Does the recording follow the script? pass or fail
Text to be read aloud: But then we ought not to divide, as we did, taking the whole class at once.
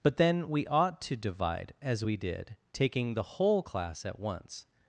fail